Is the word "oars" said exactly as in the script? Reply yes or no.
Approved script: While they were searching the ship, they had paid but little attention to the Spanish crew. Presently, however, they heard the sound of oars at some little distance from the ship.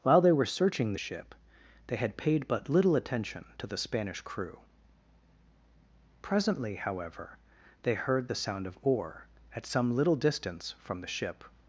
no